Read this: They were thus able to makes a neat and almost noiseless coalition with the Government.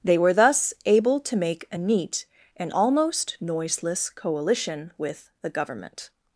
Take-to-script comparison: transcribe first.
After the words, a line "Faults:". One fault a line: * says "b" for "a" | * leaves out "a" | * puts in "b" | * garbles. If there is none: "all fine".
They were thus able to make a neat and almost noiseless coalition with the Government.
Faults:
* says "make" for "makes"